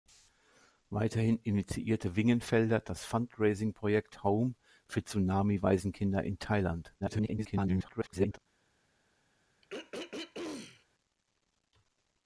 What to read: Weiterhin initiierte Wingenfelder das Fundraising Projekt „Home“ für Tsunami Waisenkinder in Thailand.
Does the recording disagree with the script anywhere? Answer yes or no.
yes